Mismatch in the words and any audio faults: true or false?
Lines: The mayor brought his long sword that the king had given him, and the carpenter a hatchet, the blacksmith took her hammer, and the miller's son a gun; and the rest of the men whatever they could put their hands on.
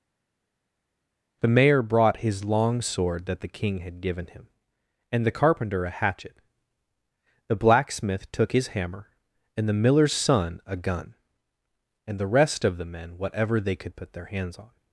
true